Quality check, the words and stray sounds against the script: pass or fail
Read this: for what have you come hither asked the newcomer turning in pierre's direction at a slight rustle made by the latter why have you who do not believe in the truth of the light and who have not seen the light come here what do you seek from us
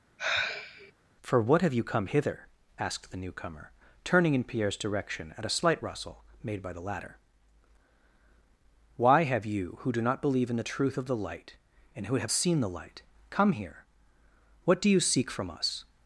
fail